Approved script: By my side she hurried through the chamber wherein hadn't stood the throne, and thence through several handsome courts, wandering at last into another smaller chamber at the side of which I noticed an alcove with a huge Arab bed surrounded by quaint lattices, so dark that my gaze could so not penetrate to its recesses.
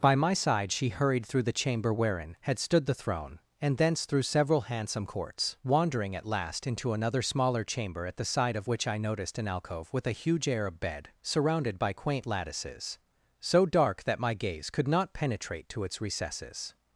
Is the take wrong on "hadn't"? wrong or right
wrong